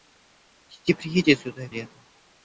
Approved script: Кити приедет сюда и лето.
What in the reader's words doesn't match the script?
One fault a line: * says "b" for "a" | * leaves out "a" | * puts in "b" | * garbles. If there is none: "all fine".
all fine